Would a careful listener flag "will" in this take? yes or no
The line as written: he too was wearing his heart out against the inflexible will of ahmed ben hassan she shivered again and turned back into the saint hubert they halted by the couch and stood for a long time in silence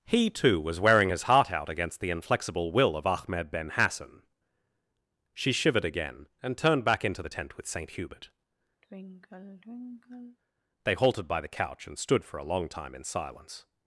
no